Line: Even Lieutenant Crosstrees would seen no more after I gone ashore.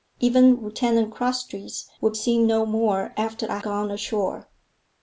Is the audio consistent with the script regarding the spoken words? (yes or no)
yes